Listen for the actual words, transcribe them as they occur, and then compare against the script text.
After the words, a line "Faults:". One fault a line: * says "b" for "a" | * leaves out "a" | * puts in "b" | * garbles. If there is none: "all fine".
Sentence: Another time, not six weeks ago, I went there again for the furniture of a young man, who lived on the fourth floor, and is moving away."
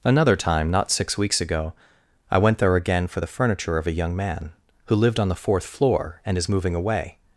Another time, not six weeks ago, I went there again for the furniture of a young man, who lived on the fourth floor, and is moving away."
Faults:
all fine